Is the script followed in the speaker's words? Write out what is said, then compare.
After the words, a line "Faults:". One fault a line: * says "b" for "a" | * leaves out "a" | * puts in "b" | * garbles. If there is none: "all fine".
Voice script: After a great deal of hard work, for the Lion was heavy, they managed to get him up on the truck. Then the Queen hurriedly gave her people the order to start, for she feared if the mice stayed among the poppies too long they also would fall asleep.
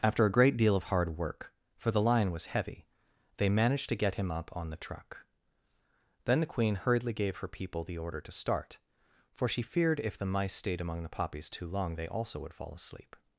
After a great deal of hard work, for the Lion was heavy, they managed to get him up on the truck. Then the Queen hurriedly gave her people the order to start, for she feared if the mice stayed among the poppies too long they also would fall asleep.
Faults:
all fine